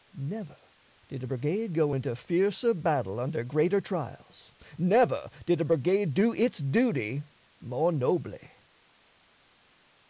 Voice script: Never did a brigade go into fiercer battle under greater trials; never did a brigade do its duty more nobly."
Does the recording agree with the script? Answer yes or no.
yes